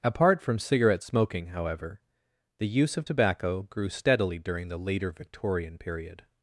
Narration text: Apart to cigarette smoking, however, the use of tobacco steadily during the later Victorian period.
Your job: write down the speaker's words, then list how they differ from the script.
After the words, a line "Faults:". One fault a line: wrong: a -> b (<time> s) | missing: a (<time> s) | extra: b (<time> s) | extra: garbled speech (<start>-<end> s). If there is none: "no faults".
Apart from cigarette smoking, however, the use of tobacco grew steadily during the later Victorian period.
Faults:
wrong: to -> from (0.4 s)
extra: grew (3.6 s)